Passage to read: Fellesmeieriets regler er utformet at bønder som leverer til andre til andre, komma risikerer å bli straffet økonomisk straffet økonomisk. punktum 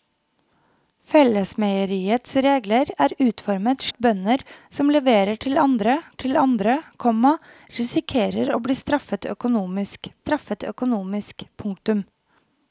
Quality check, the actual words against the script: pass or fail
pass